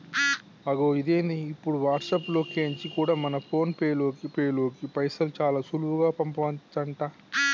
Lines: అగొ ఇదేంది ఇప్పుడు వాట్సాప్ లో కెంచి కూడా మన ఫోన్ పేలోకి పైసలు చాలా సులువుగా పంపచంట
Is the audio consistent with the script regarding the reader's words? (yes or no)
no